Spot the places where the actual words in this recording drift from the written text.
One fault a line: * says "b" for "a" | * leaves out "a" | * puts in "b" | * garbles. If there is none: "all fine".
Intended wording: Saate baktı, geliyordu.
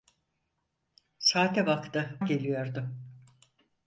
all fine